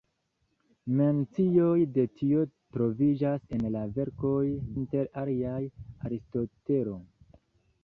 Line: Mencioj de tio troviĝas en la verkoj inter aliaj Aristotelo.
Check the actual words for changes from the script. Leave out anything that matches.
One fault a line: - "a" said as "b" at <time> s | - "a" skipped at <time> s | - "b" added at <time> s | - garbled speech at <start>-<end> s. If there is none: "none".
none